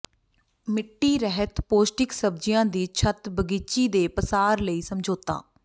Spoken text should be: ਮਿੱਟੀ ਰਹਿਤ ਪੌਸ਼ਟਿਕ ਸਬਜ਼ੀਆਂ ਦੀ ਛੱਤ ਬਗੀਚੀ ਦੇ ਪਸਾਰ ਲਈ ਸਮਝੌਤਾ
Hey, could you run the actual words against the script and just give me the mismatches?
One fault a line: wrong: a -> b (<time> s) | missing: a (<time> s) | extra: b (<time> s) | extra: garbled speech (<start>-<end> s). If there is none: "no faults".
no faults